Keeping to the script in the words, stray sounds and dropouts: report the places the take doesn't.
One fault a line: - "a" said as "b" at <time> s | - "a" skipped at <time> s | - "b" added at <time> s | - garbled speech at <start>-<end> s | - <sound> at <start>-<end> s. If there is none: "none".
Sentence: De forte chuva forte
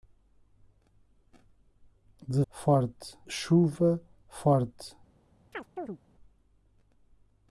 - chirp at 5.5-6.0 s